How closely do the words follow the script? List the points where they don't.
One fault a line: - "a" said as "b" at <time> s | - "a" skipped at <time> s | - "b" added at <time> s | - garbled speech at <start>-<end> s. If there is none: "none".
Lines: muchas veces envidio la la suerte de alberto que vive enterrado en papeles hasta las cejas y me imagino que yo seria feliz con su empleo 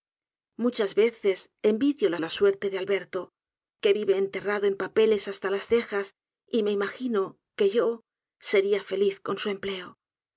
none